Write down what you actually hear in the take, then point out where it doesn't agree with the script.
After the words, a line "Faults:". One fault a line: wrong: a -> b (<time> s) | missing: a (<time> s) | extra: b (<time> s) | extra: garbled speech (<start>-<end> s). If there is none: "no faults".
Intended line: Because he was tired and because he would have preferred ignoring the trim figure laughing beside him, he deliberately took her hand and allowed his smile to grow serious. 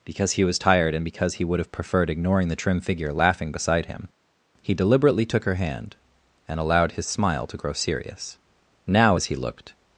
Because he was tired and because he would have preferred ignoring the trim figure laughing beside him, he deliberately took her hand and allowed his smile to grow serious. Now as he looked
Faults:
extra: Now as he looked (8.9 s)